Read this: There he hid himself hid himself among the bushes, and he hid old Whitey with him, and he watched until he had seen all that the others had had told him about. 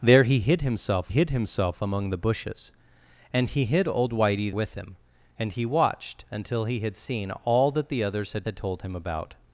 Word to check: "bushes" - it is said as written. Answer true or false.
true